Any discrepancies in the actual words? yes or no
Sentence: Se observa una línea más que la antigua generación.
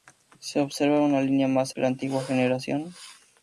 no